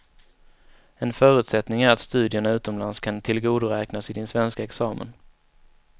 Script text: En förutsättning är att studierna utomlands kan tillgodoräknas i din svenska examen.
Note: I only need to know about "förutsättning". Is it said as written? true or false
true